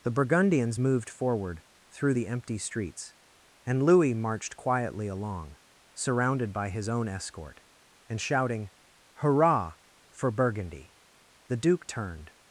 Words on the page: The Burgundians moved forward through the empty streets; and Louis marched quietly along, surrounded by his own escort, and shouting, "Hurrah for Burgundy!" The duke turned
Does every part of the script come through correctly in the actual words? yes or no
yes